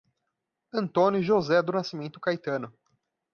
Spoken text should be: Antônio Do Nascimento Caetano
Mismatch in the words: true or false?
true